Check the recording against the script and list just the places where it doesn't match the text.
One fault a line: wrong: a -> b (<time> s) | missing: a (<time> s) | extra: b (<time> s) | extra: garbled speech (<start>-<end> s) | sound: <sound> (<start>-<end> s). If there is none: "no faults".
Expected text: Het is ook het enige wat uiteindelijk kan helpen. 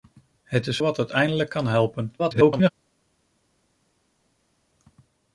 missing: ook het enige (0.8 s)
extra: garbled speech (2.2-2.7 s)